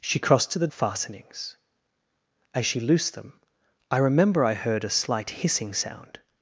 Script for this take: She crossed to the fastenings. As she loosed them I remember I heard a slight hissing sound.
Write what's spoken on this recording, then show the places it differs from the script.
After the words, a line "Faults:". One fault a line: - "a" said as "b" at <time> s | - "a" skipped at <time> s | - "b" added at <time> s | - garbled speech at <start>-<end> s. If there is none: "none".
She crossed to the fastenings. As she loosed them I remember I heard a slight hissing sound.
Faults:
none